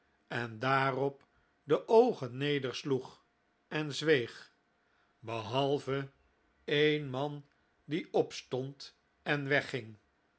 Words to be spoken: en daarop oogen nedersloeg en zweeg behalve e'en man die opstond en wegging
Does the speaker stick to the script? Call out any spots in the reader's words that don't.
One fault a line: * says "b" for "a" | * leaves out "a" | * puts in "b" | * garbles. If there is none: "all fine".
* puts in "de"